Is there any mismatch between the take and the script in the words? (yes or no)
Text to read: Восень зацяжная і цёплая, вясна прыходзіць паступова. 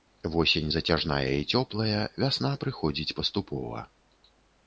no